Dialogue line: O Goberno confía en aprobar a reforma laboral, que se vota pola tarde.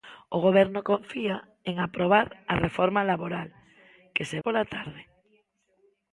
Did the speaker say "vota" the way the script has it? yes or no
no